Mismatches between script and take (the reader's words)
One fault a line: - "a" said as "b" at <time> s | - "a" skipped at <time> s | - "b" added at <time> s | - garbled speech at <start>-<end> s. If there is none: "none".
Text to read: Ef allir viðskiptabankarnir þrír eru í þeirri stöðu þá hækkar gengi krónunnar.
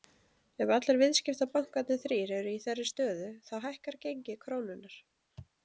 none